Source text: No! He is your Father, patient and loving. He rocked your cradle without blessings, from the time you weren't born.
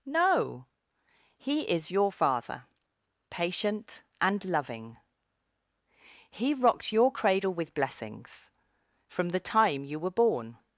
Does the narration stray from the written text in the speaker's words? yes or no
yes